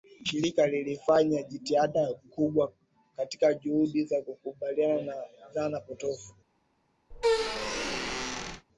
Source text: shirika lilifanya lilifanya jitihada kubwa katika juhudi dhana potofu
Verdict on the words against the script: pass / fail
fail